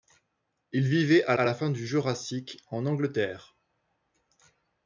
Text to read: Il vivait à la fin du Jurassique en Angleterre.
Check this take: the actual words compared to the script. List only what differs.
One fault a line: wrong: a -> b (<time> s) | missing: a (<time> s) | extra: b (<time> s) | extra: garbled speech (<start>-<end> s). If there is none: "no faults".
extra: à (1.3 s)